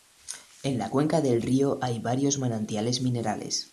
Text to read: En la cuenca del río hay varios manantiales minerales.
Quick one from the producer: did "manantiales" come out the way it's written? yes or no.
yes